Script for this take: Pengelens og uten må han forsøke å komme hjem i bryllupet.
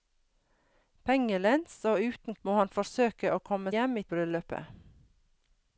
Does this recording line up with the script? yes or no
yes